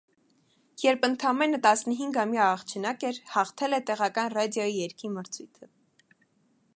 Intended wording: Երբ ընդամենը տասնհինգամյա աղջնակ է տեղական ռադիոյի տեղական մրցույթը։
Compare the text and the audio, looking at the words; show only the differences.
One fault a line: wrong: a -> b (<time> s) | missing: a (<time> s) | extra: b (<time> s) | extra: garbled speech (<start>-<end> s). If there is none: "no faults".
extra: էր հաղթել (3.1 s)
wrong: տեղական -> երգի (4.8 s)